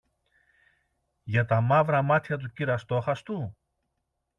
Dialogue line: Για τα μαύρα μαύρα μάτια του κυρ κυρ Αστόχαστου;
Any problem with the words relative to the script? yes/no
yes